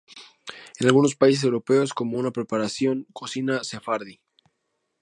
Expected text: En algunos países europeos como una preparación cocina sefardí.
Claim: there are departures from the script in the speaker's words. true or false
false